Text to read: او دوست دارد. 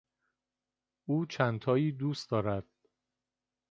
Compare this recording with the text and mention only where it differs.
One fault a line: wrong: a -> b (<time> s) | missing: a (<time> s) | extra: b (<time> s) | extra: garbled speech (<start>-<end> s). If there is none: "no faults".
extra: چندتایی (1.2 s)